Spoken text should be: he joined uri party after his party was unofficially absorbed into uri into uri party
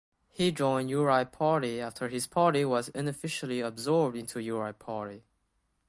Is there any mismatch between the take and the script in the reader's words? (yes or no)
yes